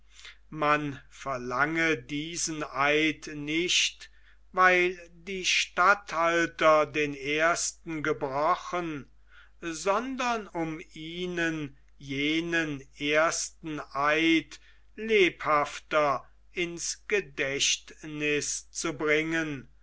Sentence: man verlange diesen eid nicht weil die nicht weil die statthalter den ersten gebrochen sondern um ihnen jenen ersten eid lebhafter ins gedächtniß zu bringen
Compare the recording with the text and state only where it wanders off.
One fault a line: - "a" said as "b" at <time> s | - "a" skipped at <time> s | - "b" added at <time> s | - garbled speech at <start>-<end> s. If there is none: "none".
- "nicht weil die" skipped at 5.5 s